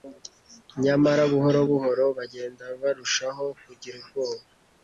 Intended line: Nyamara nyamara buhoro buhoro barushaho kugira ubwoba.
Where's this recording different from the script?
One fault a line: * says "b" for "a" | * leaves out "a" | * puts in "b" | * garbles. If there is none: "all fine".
* says "buhoro" for "nyamara"
* says "bagenda" for "buhoro"